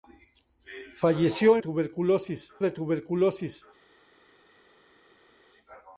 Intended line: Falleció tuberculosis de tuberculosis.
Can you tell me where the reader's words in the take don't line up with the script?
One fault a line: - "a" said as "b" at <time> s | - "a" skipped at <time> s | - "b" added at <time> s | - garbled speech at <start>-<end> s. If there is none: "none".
none